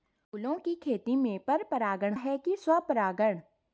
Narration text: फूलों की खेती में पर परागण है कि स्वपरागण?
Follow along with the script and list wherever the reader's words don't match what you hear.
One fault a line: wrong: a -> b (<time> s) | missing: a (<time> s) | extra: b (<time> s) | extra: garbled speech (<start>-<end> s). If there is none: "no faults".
no faults